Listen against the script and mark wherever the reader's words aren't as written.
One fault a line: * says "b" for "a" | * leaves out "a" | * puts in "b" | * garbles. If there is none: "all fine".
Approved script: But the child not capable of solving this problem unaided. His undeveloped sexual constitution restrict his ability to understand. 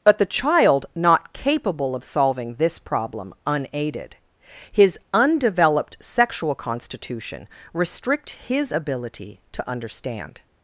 all fine